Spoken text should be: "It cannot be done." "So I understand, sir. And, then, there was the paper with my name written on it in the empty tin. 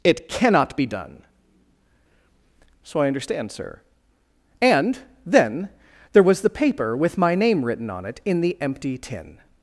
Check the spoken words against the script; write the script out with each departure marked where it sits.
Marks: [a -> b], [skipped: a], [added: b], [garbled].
"It cannot be done." "So I understand, sir. And, then, there was the paper with my name written on it in the empty tin.